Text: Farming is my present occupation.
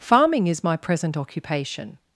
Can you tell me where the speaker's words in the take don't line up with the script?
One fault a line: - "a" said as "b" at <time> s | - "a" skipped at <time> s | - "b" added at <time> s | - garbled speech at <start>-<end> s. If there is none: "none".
none